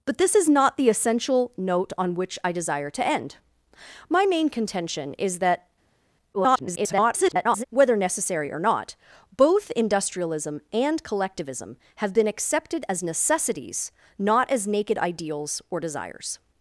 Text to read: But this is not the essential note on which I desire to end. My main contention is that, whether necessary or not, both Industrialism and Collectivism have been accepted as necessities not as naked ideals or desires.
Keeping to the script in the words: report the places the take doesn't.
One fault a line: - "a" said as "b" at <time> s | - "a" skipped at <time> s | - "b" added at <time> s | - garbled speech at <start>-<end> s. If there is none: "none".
- garbled speech at 6.3-7.6 s